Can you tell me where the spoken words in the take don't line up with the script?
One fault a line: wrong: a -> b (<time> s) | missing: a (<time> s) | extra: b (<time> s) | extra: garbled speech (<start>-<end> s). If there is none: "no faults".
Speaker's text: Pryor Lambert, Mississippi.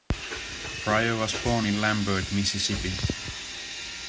extra: was born in (1.1 s)